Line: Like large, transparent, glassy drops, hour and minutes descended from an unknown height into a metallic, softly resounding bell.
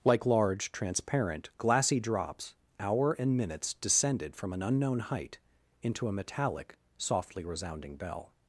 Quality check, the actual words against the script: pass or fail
pass